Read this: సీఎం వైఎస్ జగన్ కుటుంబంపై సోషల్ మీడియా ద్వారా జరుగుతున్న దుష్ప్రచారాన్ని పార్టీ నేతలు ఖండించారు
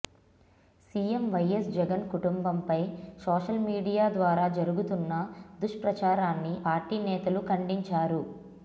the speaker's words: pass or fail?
pass